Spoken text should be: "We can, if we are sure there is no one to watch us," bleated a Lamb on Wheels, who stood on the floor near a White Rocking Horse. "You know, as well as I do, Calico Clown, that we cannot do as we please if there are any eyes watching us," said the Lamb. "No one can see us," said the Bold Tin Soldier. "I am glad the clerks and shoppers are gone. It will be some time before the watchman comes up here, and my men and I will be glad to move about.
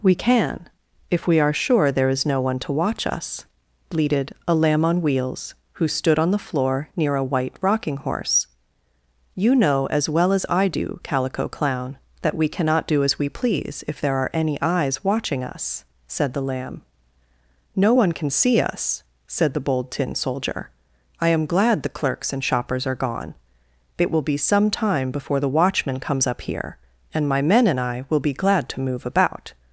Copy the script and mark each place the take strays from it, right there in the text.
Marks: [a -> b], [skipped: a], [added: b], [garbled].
"We can, if we are sure there is no one to watch us," bleated a Lamb on Wheels, who stood on the floor near a White Rocking Horse. "You know, as well as I do, Calico Clown, that we cannot do as we please if there are any eyes watching us," said the Lamb. "No one can see us," said the Bold Tin Soldier. "I am glad the clerks and shoppers are gone. It will be some time before the watchman comes up here, and my men and I will be glad to move about.